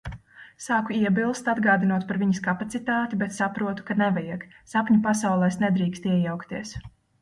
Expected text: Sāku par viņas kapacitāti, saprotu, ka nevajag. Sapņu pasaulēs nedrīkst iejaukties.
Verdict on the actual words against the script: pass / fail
fail